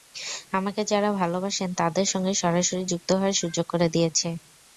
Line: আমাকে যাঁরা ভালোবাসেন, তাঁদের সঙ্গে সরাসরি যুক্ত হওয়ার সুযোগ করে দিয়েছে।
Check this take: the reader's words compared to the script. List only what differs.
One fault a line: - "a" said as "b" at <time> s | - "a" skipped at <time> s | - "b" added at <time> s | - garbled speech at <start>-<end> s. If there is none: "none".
none